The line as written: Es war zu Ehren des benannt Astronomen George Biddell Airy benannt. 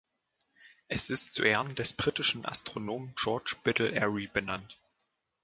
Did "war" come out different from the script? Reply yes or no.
yes